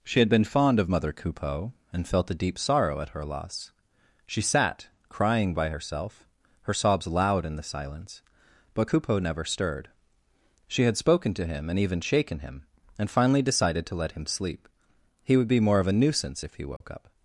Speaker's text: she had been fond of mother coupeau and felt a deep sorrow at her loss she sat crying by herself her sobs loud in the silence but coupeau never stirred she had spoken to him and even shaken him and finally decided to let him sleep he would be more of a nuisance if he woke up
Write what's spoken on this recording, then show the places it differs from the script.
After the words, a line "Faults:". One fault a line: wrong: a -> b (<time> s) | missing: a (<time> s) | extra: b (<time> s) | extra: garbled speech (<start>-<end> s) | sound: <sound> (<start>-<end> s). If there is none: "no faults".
she had been fond of mother coupeau and felt a deep sorrow at her loss she sat crying by herself her sobs loud in the silence but coupeau never stirred she had spoken to him and even shaken him and finally decided to let him sleep he would be more of a nuisance if he woke up
Faults:
sound: dropout (16.8-16.8 s)